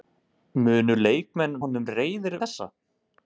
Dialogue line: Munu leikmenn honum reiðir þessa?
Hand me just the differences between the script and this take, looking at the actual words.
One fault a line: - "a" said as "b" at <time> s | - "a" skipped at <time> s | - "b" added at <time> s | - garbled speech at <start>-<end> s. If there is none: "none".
none